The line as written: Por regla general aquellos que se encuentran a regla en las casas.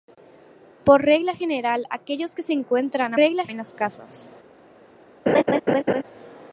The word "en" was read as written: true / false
true